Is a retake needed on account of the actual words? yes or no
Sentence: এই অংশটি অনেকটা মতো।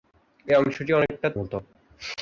no